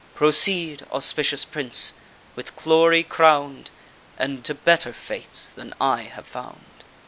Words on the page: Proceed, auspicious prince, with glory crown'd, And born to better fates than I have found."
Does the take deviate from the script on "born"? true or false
true